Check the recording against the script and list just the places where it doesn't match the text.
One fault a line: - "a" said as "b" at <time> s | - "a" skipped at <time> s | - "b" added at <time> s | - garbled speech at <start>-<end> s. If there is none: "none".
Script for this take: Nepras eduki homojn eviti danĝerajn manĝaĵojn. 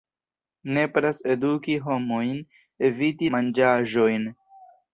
- "danĝerajn" skipped at 3.3 s